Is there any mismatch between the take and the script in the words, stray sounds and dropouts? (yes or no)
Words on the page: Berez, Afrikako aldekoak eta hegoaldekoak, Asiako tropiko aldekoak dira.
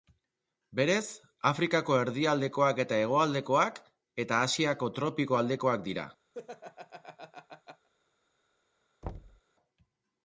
yes